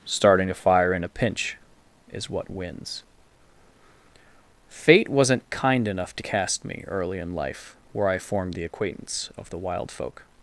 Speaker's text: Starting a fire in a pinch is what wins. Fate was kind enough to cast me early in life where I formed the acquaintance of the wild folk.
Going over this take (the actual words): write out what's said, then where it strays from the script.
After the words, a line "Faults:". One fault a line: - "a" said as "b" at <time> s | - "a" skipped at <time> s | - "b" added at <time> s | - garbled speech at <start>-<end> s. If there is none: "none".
Starting a fire in a pinch is what wins. Fate wasn't kind enough to cast me early in life where I formed the acquaintance of the wild folk.
Faults:
- "was" said as "wasn't" at 5.1 s